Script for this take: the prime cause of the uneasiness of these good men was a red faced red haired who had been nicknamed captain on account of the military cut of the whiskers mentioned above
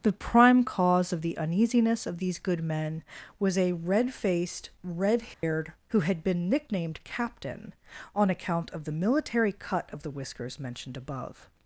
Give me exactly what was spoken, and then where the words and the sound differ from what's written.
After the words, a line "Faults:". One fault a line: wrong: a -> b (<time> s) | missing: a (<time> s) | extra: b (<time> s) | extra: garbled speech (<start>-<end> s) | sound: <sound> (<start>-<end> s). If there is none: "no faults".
the prime cause of the uneasiness of these good men was a red faced red haired who had been nicknamed captain on account of the military cut of the whiskers mentioned above
Faults:
sound: dropout (5.3-5.4 s)